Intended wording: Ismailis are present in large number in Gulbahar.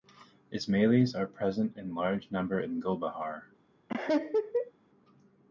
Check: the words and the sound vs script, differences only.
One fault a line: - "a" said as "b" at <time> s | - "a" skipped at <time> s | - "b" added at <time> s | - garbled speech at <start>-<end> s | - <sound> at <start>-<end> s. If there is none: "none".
- laugh at 3.9-4.7 s